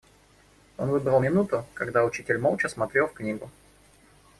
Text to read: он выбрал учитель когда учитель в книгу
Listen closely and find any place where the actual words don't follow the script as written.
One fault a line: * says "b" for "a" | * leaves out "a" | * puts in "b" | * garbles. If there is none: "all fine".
* says "минуту" for "учитель"
* puts in "молча смотрел"